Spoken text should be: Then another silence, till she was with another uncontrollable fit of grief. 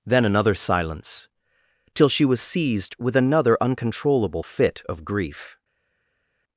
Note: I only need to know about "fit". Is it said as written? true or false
true